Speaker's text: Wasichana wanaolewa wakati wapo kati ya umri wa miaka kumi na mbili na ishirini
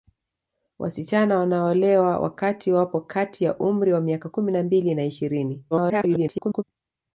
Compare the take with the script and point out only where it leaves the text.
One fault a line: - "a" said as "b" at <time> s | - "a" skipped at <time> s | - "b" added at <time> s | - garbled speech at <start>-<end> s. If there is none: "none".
- garbled speech at 5.7-6.6 s